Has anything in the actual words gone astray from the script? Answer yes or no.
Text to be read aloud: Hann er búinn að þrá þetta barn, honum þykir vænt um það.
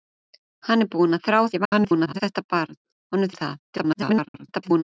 yes